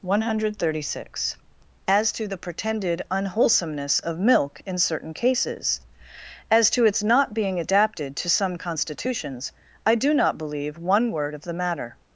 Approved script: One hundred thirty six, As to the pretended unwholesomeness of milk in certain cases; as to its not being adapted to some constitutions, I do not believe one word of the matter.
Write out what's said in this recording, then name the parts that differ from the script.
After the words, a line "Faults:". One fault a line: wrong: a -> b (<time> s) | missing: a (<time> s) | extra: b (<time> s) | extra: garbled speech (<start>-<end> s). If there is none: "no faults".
One hundred thirty six, As to the pretended unwholesomeness of milk in certain cases; as to its not being adapted to some constitutions, I do not believe one word of the matter.
Faults:
no faults